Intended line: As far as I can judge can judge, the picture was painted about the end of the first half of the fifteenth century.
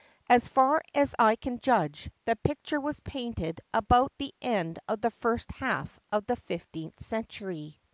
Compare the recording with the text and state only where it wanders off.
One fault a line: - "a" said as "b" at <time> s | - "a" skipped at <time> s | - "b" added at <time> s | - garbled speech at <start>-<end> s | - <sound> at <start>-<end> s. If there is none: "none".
- "can judge" skipped at 2.1 s